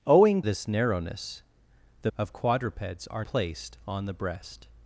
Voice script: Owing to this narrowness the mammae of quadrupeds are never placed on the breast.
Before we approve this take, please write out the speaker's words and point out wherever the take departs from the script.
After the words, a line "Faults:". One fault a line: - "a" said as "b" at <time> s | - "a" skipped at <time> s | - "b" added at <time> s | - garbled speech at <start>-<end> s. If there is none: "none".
Owing this narrowness the of quadrupeds are placed on the breast.
Faults:
- "to" skipped at 0.4 s
- "mammae" skipped at 2.1 s
- "never" skipped at 3.2 s